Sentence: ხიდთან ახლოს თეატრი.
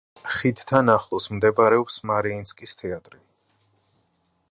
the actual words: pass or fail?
fail